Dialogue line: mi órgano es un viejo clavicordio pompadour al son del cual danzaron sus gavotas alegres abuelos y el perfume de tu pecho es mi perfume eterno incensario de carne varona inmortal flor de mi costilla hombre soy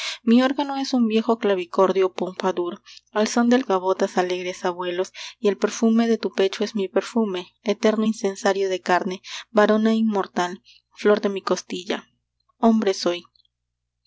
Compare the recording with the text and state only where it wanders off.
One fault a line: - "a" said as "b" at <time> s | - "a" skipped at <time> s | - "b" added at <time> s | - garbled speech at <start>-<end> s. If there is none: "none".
- "cual danzaron sus" skipped at 3.6 s